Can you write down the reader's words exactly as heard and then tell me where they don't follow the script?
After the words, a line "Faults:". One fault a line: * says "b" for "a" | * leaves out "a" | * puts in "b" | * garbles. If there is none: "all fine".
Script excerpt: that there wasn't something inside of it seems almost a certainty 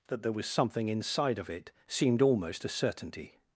that there was something inside of it seemed almost a certainty
Faults:
* says "was" for "wasn't"
* says "seemed" for "seems"